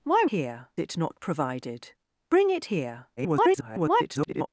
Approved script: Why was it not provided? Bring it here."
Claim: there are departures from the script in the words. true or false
true